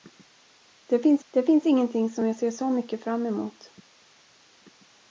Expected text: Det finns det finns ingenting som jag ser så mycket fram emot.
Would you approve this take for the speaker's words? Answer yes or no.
yes